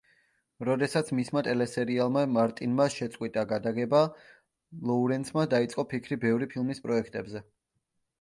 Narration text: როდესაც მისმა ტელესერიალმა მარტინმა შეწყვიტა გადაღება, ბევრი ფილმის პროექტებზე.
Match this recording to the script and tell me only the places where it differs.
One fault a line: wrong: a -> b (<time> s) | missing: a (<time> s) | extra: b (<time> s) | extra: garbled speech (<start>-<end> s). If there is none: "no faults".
extra: ლოურენსმა დაიწყო ფიქრი (4.9 s)